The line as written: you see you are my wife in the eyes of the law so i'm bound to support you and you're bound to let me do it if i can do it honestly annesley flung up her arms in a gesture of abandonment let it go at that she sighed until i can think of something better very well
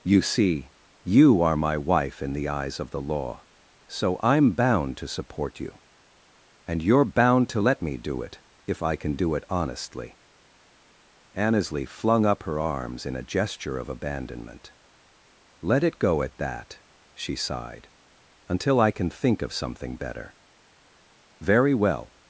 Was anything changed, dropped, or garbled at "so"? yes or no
no